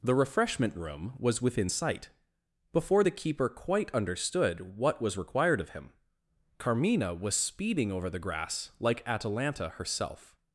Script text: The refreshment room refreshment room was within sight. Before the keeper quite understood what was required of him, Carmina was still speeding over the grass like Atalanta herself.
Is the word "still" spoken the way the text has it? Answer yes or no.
no